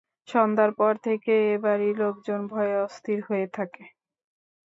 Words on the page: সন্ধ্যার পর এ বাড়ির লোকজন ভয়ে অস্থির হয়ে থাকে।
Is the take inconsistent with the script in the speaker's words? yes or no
yes